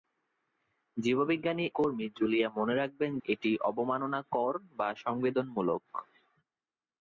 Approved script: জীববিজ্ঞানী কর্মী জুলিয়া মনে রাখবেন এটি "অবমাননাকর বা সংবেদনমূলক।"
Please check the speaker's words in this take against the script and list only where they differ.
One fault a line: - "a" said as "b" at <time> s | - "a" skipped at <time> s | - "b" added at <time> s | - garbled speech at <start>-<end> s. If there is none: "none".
none